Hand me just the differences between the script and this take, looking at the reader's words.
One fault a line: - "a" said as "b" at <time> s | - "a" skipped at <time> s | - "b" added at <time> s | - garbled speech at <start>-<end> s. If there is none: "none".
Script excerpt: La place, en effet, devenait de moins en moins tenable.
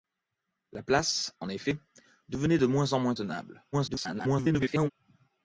- garbled speech at 3.7-4.9 s